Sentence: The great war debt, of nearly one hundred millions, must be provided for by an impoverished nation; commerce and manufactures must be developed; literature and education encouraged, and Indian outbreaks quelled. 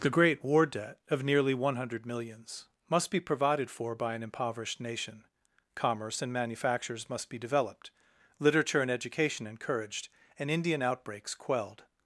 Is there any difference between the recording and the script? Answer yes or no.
no